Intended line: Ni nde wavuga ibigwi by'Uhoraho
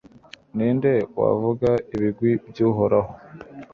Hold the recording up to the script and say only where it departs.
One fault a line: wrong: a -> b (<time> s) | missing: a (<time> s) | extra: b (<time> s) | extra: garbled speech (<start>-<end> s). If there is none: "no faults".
no faults